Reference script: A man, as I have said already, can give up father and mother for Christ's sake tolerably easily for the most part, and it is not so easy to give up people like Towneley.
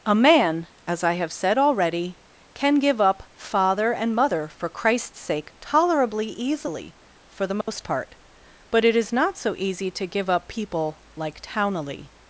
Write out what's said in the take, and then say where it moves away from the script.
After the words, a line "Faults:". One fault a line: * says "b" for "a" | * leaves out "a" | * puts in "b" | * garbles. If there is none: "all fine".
A man, as I have said already, can give up father and mother for Christ's sake tolerably easily for the most part, but it is not so easy to give up people like Towneley.
Faults:
* says "but" for "and"